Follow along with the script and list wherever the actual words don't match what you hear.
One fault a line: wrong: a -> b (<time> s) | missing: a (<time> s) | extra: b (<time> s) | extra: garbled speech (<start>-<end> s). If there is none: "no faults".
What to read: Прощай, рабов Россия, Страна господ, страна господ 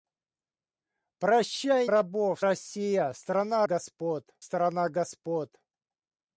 no faults